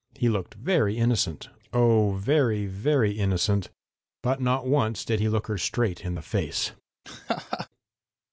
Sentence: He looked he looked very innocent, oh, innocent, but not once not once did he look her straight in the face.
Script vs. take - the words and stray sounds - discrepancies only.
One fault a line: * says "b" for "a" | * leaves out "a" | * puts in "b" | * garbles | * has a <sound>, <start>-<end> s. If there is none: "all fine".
* leaves out "he looked"
* puts in "very very"
* leaves out "not once"
* has a laugh, 7.0-7.7 s